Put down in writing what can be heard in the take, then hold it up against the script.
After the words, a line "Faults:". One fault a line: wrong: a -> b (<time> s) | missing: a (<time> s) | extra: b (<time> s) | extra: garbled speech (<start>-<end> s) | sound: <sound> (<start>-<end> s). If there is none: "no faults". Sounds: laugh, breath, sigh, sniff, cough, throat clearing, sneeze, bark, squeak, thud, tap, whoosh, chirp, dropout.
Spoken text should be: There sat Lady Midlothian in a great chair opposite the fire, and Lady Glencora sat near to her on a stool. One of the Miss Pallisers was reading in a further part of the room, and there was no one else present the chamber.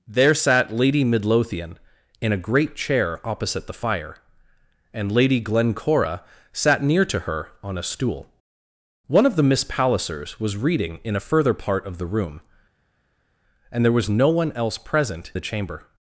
There sat Lady Midlothian in a great chair opposite the fire, and Lady Glencora sat near to her on a stool. One of the Miss Pallisers was reading in a further part of the room, and there was no one else present the chamber.
Faults:
no faults